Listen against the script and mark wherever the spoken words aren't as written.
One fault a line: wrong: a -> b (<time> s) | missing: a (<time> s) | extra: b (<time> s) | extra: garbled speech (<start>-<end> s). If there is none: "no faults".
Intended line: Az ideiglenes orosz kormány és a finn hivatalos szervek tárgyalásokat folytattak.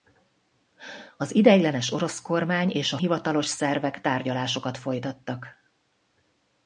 missing: finn (3.0 s)